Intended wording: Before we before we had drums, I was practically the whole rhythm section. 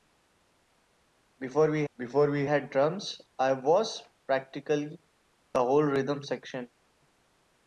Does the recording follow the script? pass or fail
pass